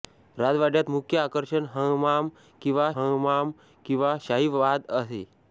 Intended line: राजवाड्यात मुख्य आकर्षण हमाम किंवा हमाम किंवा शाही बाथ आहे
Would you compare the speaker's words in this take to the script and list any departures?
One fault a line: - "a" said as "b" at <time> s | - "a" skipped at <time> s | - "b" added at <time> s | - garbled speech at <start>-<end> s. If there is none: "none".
none